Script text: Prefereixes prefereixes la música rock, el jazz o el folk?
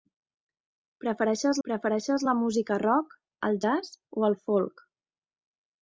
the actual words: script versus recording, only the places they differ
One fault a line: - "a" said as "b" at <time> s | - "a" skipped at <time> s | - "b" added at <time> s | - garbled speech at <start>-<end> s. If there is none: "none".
none